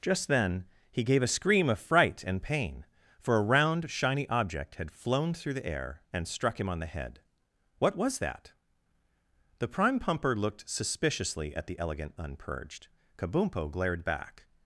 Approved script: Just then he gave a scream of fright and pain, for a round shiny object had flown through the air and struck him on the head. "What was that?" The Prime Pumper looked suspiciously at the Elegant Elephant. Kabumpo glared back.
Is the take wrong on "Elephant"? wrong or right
wrong